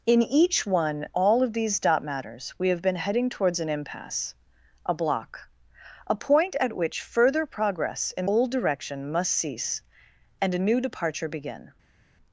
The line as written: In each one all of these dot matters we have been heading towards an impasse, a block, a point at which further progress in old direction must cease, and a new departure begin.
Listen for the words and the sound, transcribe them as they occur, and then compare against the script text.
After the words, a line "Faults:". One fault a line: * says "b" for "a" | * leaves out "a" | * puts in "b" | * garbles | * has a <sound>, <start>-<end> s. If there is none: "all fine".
In each one all of these dot matters we have been heading towards an impasse, a block, a point at which further progress in old direction must cease, and a new departure begin.
Faults:
all fine